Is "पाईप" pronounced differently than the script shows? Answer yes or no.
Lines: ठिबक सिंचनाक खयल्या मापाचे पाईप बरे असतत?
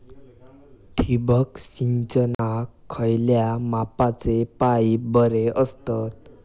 no